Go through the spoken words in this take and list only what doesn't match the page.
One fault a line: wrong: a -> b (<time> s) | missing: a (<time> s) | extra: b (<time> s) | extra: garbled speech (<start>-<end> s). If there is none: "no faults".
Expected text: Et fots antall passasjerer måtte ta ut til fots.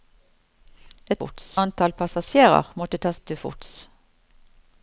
no faults